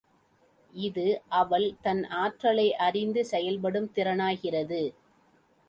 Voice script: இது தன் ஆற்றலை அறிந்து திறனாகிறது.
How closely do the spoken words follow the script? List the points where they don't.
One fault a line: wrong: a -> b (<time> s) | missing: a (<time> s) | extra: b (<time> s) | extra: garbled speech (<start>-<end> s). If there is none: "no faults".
extra: அவள் (1.3 s)
extra: செயல்படும் (3.2 s)